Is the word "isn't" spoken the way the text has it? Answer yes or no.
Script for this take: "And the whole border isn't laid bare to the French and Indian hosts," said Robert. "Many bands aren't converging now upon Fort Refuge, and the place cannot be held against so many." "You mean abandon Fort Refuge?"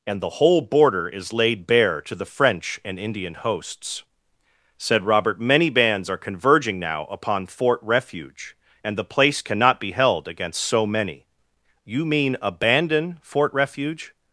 no